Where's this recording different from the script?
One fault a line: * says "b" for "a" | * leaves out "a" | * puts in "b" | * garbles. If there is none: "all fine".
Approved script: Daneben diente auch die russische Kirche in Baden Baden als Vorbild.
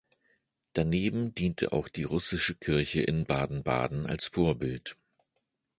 all fine